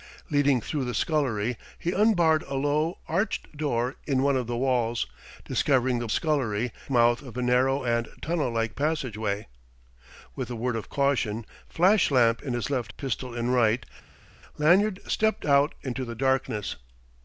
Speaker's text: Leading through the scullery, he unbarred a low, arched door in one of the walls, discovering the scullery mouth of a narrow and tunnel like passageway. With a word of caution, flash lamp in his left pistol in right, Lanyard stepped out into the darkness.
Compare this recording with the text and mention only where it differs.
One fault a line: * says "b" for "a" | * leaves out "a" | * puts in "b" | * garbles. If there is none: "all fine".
all fine